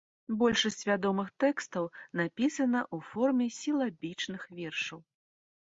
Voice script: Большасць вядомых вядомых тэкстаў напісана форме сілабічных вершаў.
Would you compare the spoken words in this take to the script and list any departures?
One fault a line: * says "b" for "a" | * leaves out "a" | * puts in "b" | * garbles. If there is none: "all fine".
* leaves out "вядомых"
* puts in "ў"